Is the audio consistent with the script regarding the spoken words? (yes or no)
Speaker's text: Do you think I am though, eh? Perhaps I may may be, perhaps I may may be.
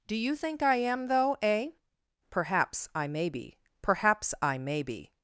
no